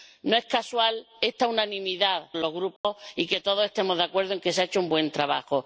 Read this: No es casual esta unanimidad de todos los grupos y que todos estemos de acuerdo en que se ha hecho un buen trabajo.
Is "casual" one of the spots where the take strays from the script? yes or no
no